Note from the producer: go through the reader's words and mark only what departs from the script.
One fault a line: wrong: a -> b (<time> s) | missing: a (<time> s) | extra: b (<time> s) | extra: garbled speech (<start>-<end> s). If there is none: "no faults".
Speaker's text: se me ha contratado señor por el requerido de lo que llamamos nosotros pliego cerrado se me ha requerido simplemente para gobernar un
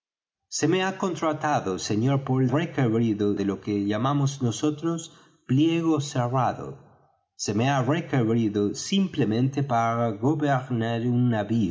no faults